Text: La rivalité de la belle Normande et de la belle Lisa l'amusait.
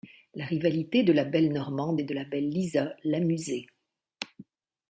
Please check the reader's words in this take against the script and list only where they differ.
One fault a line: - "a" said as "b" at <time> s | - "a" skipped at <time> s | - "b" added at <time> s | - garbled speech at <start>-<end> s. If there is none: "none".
none